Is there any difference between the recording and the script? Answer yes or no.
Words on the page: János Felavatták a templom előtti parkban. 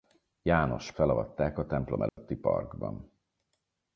no